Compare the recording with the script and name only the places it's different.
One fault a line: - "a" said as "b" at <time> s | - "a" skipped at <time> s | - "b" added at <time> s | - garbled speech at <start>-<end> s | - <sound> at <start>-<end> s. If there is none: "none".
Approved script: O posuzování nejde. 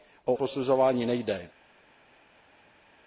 none